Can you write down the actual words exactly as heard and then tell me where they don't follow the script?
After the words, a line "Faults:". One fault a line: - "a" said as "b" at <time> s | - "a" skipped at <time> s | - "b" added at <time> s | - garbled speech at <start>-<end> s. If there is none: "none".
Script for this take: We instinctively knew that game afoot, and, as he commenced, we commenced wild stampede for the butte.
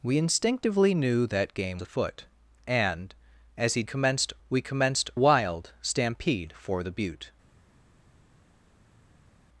We instinctively knew that game afoot, and, as he commenced, we commenced wild stampede for the butte.
Faults:
none